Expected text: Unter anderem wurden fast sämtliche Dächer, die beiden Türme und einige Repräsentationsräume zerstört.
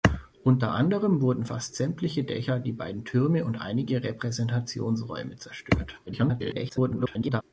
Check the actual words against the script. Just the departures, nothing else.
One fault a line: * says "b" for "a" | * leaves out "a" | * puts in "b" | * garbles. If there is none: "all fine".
* garbles